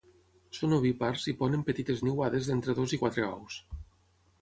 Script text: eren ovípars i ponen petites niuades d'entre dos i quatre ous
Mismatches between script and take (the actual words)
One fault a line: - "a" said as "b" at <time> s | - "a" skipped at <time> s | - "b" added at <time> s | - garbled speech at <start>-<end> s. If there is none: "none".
- "eren" said as "són" at 0.6 s